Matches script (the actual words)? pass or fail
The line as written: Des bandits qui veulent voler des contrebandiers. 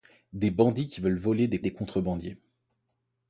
fail